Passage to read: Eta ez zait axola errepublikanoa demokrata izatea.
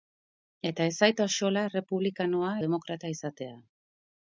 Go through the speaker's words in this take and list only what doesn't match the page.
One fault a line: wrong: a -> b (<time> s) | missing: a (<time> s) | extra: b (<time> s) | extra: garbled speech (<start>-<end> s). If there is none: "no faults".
no faults